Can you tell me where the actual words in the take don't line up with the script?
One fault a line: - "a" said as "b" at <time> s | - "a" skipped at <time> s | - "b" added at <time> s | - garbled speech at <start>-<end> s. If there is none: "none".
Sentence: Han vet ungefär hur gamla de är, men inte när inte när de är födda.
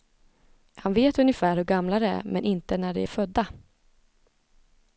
- "inte när" skipped at 2.9 s